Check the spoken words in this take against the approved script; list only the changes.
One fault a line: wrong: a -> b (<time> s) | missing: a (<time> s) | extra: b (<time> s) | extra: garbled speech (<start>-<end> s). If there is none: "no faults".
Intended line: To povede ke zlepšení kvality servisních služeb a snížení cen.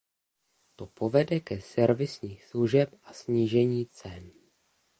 missing: zlepšení kvality (1.6 s)